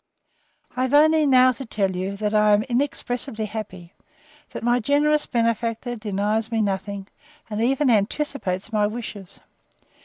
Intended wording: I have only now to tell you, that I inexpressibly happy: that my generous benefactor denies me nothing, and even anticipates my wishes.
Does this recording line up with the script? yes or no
no